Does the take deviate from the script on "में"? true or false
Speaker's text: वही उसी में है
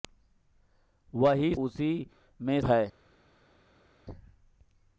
false